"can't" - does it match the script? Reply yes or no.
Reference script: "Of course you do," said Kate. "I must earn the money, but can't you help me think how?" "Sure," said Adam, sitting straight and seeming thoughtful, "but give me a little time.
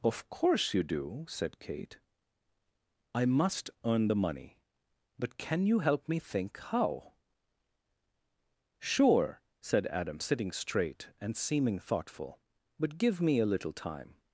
no